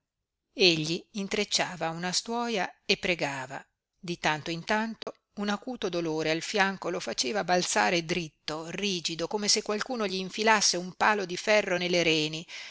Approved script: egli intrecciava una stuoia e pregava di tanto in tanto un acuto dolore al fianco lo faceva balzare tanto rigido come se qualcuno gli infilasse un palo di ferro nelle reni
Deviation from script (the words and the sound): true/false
true